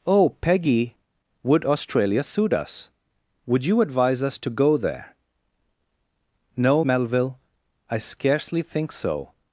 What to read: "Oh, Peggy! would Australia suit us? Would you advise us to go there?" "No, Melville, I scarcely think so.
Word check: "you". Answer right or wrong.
right